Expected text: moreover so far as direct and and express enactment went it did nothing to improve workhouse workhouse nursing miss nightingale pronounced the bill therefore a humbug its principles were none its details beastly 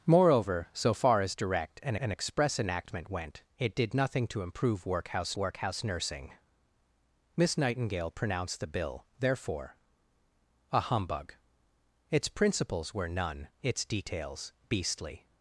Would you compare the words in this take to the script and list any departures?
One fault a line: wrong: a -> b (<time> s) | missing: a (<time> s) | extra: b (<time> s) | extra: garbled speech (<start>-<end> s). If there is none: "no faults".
no faults